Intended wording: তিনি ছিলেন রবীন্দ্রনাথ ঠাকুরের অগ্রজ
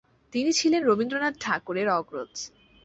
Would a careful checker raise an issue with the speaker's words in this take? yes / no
no